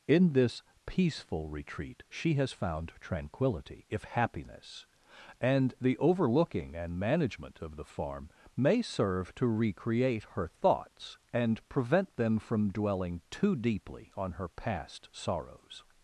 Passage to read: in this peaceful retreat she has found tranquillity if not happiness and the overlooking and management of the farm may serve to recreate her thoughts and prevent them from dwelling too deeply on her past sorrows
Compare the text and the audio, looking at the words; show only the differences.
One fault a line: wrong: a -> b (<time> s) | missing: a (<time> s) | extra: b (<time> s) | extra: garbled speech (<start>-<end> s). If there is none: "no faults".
missing: not (4.0 s)